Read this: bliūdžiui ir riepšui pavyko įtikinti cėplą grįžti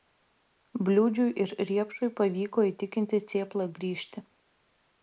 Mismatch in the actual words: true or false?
false